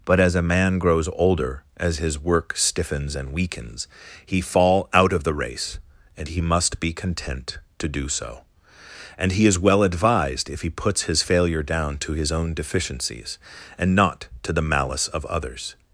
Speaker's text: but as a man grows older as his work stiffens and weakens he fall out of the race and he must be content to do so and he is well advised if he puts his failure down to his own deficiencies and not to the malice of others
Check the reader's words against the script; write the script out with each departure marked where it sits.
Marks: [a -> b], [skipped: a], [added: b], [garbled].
but as a man grows older as his work stiffens and weakens he fall out of the race and he must be content to do so and he is well advised if he puts his failure down to his own deficiencies and not to the malice of others